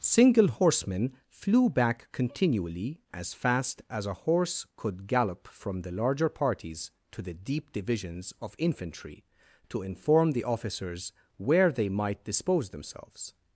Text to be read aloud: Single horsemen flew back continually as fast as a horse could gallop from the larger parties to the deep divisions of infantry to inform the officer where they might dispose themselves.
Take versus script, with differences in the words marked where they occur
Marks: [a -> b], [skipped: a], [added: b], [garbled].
Single horsemen flew back continually as fast as a horse could gallop from the larger parties to the deep divisions of infantry to inform the [officer -> officers] where they might dispose themselves.